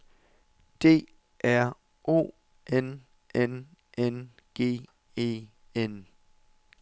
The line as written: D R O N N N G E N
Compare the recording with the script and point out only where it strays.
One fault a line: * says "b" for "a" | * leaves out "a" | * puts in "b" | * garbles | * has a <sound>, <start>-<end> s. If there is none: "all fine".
all fine